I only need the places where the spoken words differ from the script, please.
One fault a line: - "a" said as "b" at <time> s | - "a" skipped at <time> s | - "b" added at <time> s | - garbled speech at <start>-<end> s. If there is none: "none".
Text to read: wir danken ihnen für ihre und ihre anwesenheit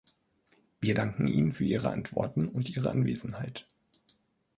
- "antworten" added at 1.9 s